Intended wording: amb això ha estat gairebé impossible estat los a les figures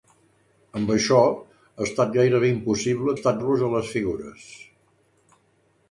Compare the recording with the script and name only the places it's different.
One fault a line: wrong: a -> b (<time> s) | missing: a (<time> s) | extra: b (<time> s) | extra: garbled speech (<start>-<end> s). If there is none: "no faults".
no faults